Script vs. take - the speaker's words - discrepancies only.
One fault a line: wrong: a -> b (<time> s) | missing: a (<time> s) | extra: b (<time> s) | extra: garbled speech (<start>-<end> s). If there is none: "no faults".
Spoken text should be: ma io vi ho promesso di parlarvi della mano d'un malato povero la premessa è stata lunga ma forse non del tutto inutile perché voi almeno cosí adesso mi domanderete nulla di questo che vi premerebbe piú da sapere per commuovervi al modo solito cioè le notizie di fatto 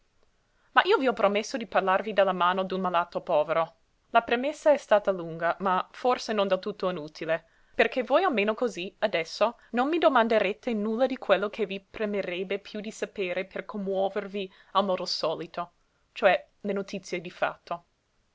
extra: non (9.7 s)
wrong: questo -> quello (11.2 s)
wrong: da -> di (12.8 s)